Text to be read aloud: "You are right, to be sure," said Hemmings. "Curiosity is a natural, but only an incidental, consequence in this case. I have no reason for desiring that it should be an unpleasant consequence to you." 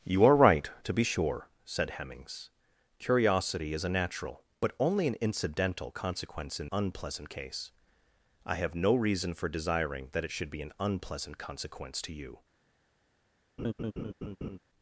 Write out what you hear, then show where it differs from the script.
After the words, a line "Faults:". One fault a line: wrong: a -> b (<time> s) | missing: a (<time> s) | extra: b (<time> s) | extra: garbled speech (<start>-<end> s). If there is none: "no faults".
"You are right, to be sure," said Hemmings. "Curiosity is a natural, but only an incidental, consequence in unpleasant case. I have no reason for desiring that it should be an unpleasant consequence to you."
Faults:
wrong: this -> unpleasant (6.7 s)